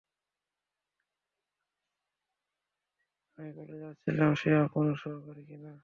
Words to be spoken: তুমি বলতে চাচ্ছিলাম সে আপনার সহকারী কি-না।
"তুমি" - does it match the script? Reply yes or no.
no